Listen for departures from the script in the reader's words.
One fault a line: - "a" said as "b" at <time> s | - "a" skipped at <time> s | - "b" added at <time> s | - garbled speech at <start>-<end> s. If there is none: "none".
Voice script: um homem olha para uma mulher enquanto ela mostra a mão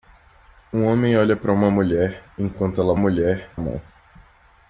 - "mostra" said as "mulher" at 3.0 s